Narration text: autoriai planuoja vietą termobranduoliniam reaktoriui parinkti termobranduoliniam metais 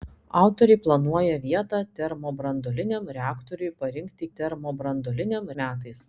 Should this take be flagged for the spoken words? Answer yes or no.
no